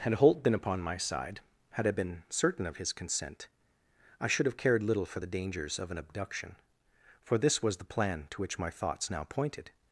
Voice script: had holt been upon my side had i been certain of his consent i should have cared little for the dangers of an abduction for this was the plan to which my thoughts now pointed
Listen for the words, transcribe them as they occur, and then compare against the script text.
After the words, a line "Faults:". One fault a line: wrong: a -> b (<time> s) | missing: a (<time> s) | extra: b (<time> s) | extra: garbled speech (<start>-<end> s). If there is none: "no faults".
had holt been upon my side had i been certain of his consent i should have cared little for the dangers of an abduction for this was the plan to which my thoughts now pointed
Faults:
no faults